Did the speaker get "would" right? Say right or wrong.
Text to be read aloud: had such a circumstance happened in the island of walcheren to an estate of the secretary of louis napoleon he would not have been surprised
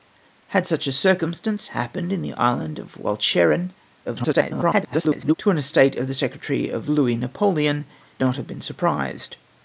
wrong